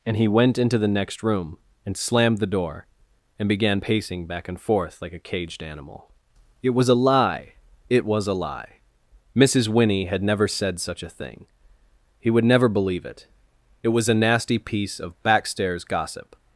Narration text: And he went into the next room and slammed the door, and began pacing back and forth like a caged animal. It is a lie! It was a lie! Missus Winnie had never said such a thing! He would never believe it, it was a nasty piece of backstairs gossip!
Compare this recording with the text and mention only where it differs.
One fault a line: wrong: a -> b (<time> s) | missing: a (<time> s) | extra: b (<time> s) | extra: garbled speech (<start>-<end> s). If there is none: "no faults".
wrong: is -> was (6.7 s)